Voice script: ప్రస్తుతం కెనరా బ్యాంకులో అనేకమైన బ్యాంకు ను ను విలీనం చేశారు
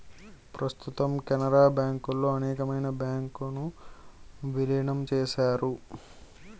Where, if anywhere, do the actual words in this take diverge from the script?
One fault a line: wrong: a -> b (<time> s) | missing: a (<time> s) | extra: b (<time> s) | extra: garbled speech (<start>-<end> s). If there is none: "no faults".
missing: ను (3.6 s)